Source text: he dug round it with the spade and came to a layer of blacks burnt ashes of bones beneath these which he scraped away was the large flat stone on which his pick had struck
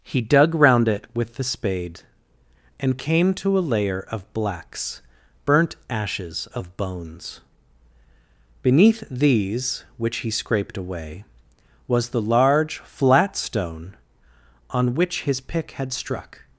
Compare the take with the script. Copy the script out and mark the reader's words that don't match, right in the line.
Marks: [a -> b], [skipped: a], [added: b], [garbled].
he dug round it with the spade and came to a layer of blacks burnt ashes of bones beneath these which he scraped away was the large flat stone on which his pick had struck